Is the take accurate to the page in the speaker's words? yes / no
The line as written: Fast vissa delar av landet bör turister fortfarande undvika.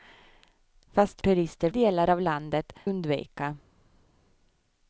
no